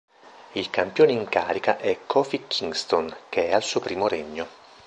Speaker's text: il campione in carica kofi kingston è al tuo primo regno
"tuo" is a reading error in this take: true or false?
true